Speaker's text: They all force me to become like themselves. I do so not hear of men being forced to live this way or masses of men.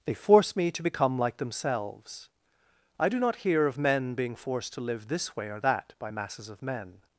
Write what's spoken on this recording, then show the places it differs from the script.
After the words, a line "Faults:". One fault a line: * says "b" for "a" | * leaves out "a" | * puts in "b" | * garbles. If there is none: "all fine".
They force me to become like themselves. I do not hear of men being forced to live this way or that by masses of men.
Faults:
* leaves out "all"
* leaves out "so"
* puts in "that by"